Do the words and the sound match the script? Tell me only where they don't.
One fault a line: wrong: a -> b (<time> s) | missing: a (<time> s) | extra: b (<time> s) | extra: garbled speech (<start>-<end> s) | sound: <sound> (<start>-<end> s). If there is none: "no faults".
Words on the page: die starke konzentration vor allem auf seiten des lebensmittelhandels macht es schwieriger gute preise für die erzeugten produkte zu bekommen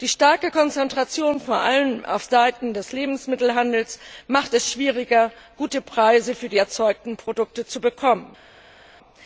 no faults